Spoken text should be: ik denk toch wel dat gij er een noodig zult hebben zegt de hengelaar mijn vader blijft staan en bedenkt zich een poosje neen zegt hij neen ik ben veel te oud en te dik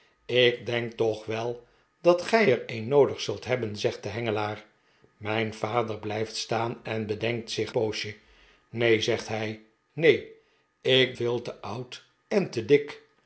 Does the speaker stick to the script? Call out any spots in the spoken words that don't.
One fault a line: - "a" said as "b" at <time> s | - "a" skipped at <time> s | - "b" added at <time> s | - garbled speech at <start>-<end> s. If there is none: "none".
- "een" skipped at 7.7 s
- "ben" skipped at 11.2 s